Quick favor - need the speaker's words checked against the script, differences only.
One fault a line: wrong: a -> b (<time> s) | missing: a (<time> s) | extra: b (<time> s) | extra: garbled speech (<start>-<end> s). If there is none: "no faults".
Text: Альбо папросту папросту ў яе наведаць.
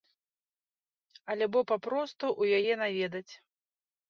missing: папросту (2.3 s)